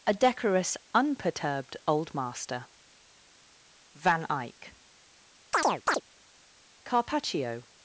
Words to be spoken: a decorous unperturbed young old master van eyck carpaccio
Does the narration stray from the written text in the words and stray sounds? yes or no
yes